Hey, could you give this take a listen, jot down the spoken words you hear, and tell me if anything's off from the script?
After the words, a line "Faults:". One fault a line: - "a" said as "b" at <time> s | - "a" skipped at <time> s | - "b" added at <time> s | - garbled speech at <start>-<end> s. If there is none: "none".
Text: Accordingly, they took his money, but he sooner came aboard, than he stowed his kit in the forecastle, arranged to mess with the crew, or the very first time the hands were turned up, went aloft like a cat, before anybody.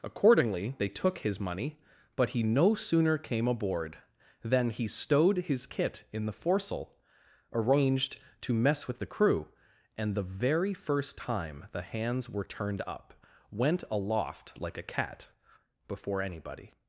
Accordingly, they took his money, but he no sooner came aboard, than he stowed his kit in the forecastle, arranged to mess with the crew, and the very first time the hands were turned up, went aloft like a cat, before anybody.
Faults:
- "no" added at 2.4 s
- "or" said as "and" at 10.0 s